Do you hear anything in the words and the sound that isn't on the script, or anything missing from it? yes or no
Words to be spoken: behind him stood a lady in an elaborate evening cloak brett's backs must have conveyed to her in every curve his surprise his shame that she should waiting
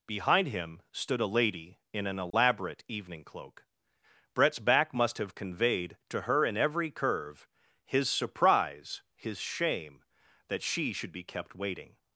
yes